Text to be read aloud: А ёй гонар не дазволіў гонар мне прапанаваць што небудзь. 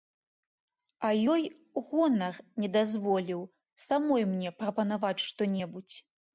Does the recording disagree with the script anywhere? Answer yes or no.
yes